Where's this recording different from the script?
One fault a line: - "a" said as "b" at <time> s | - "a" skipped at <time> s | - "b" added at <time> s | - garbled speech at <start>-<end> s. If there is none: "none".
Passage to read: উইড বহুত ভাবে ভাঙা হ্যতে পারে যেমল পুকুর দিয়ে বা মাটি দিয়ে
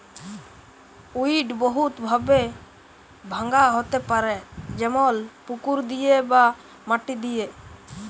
none